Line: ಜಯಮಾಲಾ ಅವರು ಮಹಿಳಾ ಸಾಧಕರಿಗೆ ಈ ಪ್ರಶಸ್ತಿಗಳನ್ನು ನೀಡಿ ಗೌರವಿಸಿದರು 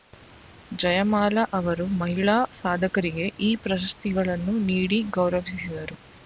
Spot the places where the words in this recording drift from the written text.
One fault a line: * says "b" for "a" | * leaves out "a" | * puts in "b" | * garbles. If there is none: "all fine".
all fine